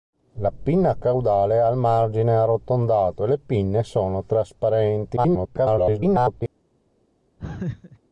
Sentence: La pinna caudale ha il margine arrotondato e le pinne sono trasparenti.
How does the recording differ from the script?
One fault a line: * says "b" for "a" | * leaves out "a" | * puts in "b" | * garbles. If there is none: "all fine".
* garbles